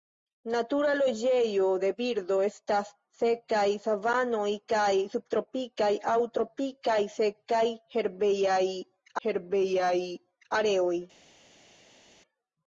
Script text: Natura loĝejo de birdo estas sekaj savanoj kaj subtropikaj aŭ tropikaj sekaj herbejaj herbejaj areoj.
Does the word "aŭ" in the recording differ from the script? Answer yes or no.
no